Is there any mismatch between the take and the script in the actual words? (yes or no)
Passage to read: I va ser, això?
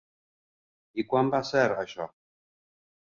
yes